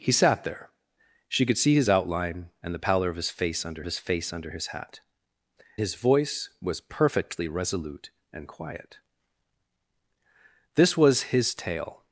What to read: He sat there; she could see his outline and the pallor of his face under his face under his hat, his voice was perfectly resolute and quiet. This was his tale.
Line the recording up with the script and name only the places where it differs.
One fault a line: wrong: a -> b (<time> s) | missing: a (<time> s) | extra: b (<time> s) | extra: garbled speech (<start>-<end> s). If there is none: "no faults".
no faults